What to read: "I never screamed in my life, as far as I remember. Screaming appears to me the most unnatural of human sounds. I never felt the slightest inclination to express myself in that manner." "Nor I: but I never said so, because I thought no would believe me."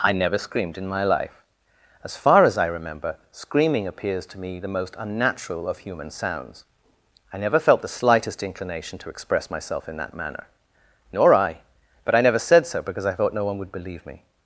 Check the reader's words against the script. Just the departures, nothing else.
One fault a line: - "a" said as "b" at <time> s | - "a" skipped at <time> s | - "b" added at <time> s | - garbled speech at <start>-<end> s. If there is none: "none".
- "one" added at 13.4 s